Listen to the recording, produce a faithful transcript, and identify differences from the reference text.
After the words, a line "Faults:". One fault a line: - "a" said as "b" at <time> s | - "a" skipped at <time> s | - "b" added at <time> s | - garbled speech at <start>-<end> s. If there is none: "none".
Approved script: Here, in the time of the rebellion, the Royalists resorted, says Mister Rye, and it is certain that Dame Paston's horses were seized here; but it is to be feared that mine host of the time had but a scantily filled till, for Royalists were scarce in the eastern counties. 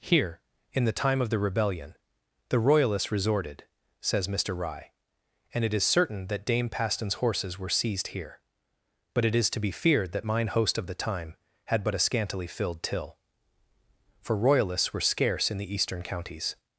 Here, in the time of the rebellion, the Royalists resorted, says Mister Rye, and it is certain that Dame Paston's horses were seized here; but it is to be feared that mine host of the time had but a scantily filled till, for Royalists were scarce in the eastern counties.
Faults:
none